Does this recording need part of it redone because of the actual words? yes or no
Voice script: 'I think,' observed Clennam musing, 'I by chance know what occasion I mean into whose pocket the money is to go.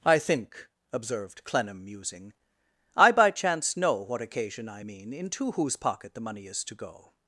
no